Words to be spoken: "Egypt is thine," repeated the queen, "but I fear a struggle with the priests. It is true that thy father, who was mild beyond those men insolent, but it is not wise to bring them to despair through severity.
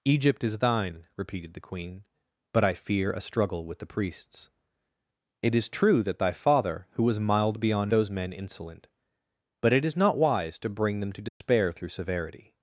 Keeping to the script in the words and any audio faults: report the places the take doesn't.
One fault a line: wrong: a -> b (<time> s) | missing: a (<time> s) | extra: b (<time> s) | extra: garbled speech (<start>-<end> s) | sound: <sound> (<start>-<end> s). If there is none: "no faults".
sound: dropout (11.3-11.4 s)